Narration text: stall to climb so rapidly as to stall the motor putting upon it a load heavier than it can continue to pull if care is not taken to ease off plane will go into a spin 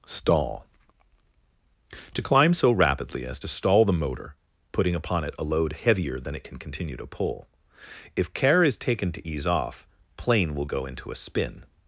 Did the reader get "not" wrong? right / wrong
wrong